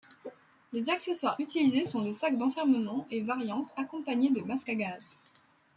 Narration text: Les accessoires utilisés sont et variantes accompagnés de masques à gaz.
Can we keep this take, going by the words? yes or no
no